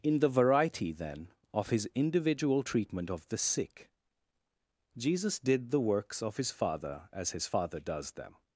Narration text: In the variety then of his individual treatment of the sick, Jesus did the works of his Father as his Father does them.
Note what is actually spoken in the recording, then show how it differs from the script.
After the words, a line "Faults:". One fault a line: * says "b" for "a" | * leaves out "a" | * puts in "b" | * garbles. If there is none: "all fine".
In the variety then of his individual treatment of the sick, Jesus did the works of his Father as his Father does them.
Faults:
all fine